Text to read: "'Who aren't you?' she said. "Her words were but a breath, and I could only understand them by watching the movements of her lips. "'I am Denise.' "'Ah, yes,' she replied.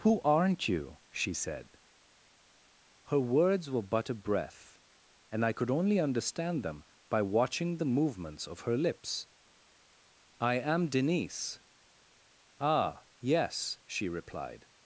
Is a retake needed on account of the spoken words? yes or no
no